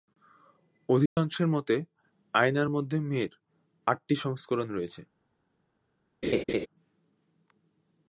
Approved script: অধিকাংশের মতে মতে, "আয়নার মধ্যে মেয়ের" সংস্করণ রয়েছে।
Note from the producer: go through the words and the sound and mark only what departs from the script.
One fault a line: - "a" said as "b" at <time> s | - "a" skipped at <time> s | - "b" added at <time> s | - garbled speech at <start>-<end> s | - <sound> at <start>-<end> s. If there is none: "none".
- dropout at 1.1-1.2 s
- "মতে" skipped at 1.8 s
- "আটটি" added at 3.9 s
- laugh at 6.2-6.7 s